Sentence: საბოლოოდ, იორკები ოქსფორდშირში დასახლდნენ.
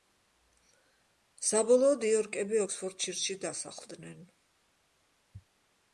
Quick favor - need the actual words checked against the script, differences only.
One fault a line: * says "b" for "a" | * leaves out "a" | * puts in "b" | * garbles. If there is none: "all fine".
all fine